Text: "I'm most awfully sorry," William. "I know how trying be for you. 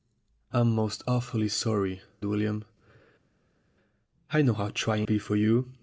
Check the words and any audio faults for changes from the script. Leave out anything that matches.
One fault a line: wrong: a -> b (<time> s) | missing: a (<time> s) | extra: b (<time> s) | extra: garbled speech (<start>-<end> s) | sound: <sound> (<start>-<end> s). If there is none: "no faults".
no faults